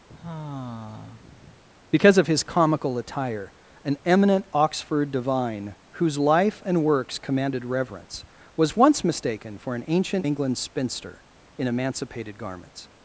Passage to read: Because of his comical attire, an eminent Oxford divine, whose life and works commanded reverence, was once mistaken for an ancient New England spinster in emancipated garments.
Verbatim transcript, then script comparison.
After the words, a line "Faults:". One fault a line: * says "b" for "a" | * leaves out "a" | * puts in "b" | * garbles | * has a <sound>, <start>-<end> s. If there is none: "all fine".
Because of his comical attire, an eminent Oxford divine, whose life and works commanded reverence, was once mistaken for an ancient England spinster in emancipated garments.
Faults:
* has a sigh, 0.1-1.6 s
* leaves out "New"